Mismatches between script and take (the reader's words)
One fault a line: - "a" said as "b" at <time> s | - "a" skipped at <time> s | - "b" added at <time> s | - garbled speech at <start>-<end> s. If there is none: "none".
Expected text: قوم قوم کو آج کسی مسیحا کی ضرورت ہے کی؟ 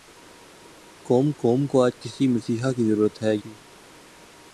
none